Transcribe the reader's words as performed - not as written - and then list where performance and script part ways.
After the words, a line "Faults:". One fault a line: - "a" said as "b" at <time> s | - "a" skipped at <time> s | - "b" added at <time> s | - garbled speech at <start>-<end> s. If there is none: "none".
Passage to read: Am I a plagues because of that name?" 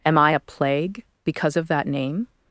Am I a plague because of that name?"
Faults:
- "plagues" said as "plague" at 0.4 s